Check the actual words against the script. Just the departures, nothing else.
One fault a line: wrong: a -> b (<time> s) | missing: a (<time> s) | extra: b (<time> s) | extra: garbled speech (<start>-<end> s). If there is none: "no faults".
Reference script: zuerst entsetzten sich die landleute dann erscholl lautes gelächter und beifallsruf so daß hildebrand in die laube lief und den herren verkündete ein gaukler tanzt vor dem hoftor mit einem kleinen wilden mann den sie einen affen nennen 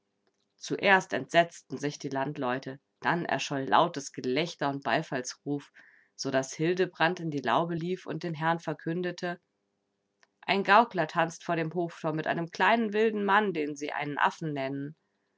no faults